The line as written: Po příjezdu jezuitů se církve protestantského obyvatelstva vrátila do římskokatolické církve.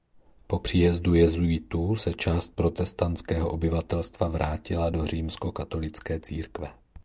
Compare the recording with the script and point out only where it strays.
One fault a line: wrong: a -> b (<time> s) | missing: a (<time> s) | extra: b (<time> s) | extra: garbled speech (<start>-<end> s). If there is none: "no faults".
wrong: církve -> část (2.1 s)